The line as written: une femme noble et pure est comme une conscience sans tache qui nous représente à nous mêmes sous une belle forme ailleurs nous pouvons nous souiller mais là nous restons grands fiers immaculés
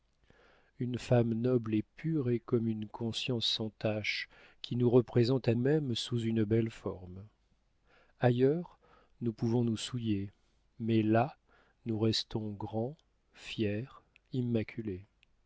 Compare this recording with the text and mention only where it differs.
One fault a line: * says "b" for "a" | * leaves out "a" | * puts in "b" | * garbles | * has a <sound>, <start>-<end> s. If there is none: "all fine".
* leaves out "nous"